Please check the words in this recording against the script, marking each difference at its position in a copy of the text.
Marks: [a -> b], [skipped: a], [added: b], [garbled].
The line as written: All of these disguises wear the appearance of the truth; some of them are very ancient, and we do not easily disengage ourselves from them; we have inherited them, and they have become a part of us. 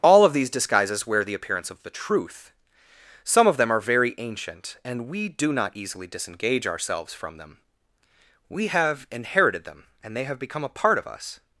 All of these disguises wear the appearance of the truth; some of them are very ancient, and we do not easily disengage ourselves from them; we have inherited them, and they have become a part of us.